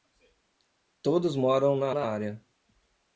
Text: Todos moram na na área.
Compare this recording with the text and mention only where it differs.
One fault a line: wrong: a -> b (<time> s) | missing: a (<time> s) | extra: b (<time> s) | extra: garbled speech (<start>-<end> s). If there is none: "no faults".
no faults